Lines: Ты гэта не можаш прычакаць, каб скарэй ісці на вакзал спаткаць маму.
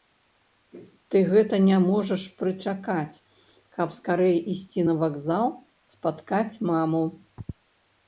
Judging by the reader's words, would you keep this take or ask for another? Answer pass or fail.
pass